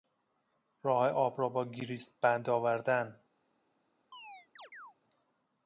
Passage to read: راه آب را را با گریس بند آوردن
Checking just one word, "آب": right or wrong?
right